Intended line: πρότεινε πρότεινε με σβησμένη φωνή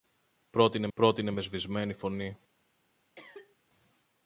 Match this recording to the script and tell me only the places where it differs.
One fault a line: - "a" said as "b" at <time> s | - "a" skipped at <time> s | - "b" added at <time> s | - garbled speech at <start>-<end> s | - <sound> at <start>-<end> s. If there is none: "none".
- cough at 3.2-3.6 s